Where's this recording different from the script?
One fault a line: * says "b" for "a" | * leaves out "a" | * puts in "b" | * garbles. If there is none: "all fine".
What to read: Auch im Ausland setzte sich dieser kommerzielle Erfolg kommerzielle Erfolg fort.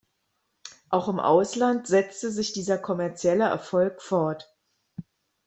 * leaves out "kommerzielle Erfolg"